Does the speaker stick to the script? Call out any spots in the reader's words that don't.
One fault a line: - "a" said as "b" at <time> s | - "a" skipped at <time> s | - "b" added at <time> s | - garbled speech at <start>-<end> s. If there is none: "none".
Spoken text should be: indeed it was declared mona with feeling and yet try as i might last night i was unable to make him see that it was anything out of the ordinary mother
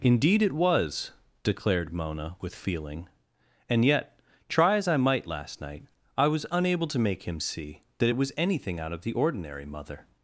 none